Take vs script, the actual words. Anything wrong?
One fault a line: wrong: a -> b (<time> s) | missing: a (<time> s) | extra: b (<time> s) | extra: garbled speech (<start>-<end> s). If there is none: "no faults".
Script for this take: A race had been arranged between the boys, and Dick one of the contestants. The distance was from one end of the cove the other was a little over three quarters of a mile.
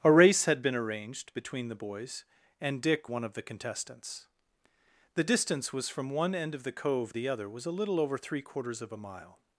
no faults